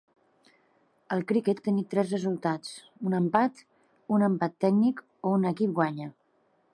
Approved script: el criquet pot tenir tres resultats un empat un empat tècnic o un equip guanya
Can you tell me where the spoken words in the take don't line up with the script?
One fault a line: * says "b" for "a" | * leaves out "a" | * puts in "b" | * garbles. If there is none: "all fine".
* leaves out "pot"